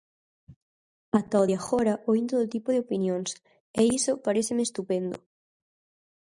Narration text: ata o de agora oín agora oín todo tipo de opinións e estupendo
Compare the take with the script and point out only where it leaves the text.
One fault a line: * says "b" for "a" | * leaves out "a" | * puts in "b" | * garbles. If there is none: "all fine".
* leaves out "agora oín"
* puts in "iso paréceme"